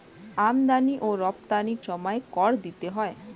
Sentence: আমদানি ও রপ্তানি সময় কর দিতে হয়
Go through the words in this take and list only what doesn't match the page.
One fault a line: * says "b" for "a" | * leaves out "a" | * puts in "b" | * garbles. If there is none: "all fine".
all fine